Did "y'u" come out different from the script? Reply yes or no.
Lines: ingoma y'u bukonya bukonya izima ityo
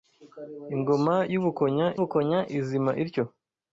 no